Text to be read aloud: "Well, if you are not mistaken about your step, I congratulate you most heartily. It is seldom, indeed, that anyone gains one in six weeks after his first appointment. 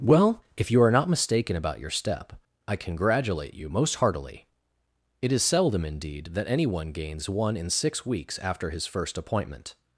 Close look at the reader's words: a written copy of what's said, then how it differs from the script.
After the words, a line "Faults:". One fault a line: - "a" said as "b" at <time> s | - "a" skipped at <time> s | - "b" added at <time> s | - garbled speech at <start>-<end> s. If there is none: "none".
"Well, if you are not mistaken about your step, I congratulate you most heartily. It is seldom, indeed, that anyone gains one in six weeks after his first appointment.
Faults:
none